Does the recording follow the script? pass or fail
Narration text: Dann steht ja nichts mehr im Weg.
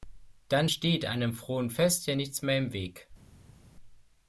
fail